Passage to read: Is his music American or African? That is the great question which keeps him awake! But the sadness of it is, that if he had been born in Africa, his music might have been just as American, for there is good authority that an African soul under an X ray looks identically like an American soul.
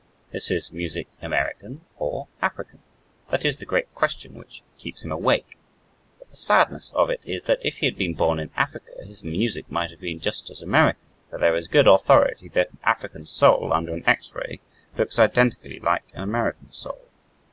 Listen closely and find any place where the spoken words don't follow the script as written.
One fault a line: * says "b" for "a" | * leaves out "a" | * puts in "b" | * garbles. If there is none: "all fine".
all fine